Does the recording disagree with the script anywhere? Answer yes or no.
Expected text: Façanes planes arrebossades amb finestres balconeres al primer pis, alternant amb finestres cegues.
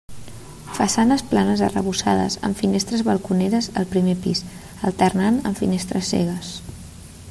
no